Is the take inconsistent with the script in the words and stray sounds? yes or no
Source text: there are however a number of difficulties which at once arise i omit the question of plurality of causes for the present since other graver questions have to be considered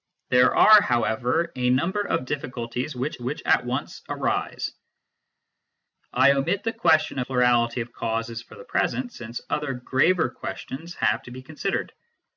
yes